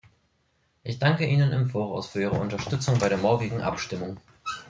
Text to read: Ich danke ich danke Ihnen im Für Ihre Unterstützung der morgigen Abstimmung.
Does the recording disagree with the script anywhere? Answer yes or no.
yes